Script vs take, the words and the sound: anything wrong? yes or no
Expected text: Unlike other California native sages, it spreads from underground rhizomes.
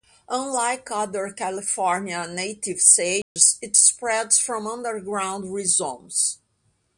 yes